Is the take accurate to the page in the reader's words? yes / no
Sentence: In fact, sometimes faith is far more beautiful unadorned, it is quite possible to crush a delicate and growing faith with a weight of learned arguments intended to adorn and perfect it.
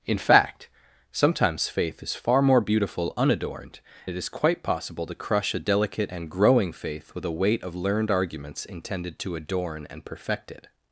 yes